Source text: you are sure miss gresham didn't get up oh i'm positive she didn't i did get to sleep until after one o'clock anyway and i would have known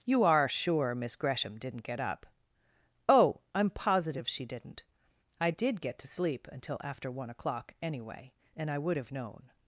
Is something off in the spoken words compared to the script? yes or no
no